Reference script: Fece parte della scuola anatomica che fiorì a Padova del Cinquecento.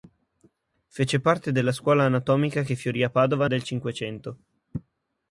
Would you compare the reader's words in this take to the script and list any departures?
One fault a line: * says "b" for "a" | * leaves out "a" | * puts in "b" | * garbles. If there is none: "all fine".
all fine